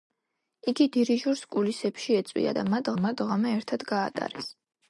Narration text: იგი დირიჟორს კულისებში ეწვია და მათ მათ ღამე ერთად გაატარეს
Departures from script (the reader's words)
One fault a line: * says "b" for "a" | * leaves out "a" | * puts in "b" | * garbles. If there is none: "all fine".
all fine